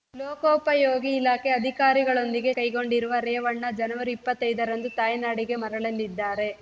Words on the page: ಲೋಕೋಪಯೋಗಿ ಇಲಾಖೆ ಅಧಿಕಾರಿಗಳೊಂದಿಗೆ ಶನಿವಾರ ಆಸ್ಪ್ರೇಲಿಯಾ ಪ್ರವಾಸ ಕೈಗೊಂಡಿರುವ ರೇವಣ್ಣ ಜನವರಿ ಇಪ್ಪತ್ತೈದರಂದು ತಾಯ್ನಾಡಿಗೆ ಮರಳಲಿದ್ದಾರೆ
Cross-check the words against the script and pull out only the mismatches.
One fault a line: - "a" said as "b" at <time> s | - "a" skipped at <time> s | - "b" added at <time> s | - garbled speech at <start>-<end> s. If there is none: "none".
- "ಶನಿವಾರ ಆಸ್ಪ್ರೇಲಿಯಾ ಪ್ರವಾಸ" skipped at 2.5 s